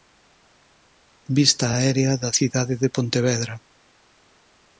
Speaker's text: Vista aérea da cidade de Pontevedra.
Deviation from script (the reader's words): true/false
false